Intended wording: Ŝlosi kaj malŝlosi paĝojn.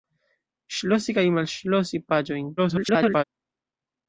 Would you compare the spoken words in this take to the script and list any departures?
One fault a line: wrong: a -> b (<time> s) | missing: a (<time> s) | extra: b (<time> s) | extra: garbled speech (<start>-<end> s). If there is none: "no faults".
extra: garbled speech (2.6-3.2 s)